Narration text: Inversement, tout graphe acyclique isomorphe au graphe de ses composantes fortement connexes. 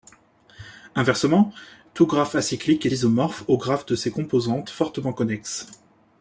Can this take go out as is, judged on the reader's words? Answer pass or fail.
pass